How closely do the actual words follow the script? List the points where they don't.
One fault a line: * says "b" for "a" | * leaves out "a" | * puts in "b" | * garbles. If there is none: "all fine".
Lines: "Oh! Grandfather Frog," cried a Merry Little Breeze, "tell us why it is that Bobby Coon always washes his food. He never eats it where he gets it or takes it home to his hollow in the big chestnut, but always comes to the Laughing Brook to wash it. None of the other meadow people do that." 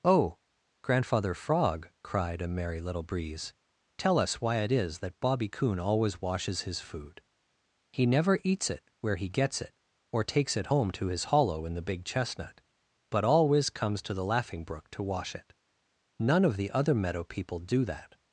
all fine